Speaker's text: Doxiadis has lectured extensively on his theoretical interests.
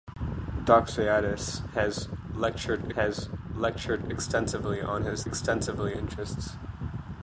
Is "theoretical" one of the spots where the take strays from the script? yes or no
yes